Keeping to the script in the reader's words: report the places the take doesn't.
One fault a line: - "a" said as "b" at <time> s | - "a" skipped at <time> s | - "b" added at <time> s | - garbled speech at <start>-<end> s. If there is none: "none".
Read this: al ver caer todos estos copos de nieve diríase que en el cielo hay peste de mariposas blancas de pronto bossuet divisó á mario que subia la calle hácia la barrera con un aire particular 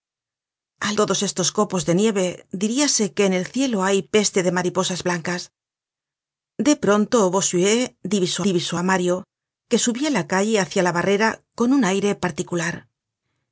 - "ver caer" skipped at 0.9 s
- "divisó" added at 8.5 s